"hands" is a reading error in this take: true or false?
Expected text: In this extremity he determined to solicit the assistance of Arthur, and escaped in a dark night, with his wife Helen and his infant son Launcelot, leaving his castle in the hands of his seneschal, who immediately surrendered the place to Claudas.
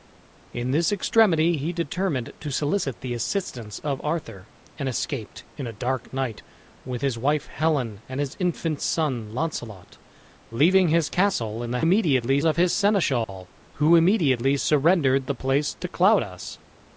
true